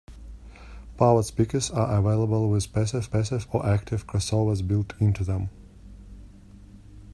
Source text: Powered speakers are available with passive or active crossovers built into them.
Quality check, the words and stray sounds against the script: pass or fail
fail